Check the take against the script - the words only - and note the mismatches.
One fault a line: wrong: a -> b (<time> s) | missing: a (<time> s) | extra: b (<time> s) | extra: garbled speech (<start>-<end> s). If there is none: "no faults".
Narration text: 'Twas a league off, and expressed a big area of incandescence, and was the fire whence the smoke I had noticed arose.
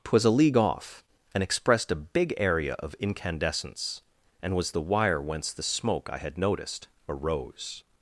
wrong: fire -> wire (4.8 s)